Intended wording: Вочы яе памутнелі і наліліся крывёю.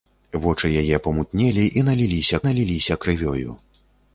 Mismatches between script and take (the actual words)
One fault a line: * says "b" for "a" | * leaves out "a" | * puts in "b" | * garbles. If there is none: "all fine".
* puts in "наліліся"